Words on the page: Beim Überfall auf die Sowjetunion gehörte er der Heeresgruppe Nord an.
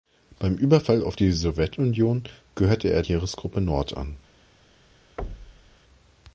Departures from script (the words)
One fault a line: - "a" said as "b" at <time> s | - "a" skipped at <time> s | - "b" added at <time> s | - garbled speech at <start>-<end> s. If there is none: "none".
- "der" skipped at 3.0 s